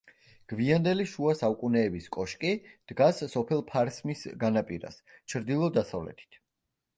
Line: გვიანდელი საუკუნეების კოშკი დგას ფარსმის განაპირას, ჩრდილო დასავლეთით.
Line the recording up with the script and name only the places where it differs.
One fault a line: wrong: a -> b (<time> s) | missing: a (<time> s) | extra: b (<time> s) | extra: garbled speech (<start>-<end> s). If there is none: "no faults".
extra: შუა (1.1 s)
extra: სოფელ (3.3 s)